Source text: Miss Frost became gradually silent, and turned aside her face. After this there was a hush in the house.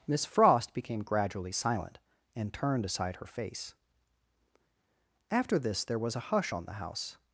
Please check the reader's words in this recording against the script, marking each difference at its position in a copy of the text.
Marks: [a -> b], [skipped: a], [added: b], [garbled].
Miss Frost became gradually silent, and turned aside her face. After this there was a hush [in -> on] the house.